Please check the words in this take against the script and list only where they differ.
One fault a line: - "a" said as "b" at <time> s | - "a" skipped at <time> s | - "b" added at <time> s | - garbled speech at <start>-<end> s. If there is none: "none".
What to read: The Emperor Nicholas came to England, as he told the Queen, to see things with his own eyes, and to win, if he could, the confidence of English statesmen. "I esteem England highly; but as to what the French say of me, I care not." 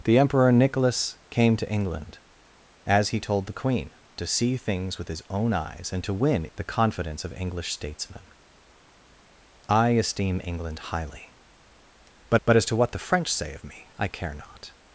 - "if he could" skipped at 6.5 s
- "but" added at 12.4 s